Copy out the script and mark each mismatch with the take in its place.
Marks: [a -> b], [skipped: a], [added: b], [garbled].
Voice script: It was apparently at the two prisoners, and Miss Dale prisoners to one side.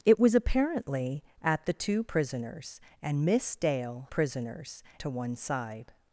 It was apparently at the two prisoners, and Miss Dale prisoners to one side.